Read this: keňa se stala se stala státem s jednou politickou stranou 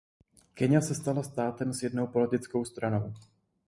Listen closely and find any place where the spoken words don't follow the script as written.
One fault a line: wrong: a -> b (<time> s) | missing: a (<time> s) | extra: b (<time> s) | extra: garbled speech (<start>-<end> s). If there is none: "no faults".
missing: se stala (1.2 s)